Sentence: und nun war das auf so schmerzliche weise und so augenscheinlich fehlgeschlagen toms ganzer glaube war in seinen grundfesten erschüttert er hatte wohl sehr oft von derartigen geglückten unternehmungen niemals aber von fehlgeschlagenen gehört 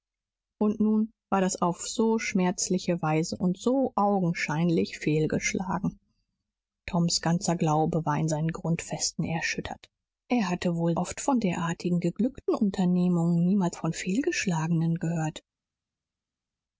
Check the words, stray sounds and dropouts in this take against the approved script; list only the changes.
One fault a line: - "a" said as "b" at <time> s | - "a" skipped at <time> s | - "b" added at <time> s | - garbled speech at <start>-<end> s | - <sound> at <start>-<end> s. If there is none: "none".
- "sehr" skipped at 11.0 s
- "aber" skipped at 13.8 s